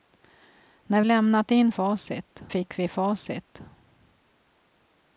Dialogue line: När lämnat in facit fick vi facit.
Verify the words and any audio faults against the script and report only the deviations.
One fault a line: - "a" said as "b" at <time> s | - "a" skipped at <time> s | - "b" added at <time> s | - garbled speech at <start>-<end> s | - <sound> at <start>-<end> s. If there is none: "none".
none